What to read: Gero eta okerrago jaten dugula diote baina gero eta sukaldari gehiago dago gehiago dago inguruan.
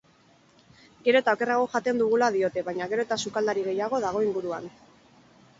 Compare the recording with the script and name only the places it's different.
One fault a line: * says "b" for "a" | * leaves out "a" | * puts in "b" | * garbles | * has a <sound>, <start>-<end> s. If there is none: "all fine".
* leaves out "gehiago dago"